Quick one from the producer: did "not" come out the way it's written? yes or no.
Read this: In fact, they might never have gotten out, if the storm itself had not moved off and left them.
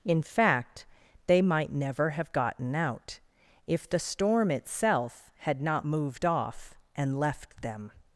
yes